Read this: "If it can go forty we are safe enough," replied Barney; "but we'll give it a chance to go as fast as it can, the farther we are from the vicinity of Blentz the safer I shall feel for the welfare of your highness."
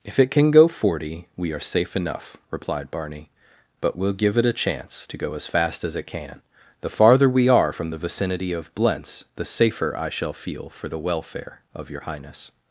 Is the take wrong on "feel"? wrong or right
right